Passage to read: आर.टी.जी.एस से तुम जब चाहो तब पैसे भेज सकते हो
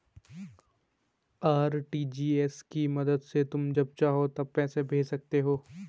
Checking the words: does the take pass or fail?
fail